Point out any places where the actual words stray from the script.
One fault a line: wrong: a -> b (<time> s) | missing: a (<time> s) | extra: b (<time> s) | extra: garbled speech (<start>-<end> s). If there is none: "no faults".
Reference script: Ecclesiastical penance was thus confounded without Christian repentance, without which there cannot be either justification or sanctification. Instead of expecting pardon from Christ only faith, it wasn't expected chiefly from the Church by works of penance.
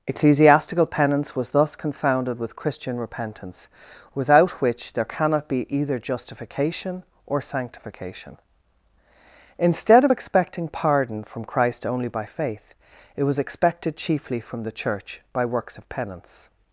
wrong: without -> with (2.4 s)
extra: by (12.1 s)
wrong: wasn't -> was (13.2 s)